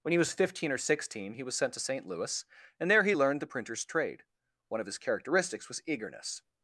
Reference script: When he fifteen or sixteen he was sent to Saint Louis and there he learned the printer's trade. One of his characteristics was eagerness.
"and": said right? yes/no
yes